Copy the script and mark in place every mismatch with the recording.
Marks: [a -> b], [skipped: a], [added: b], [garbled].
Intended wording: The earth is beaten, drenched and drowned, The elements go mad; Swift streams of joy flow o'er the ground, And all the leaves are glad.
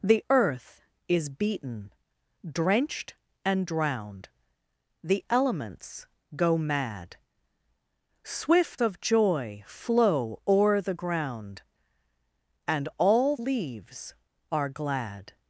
The earth is beaten, drenched and drowned, The elements go mad; Swift [skipped: streams] of joy flow o'er the ground, And all [skipped: the] leaves are glad.